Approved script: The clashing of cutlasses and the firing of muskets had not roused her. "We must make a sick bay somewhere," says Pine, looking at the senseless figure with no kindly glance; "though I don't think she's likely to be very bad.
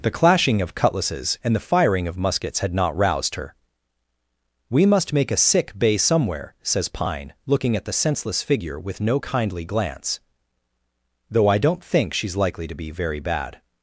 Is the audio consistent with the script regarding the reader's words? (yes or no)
yes